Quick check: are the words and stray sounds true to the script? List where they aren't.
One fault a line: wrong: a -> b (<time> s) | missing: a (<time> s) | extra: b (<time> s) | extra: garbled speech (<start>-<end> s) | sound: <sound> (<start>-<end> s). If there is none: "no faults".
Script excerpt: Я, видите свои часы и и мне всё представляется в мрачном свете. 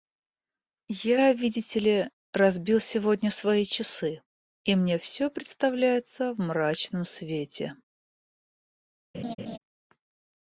extra: ли разбил сегодня (1.8 s)
missing: и (4.8 s)
sound: laugh (9.1-9.6 s)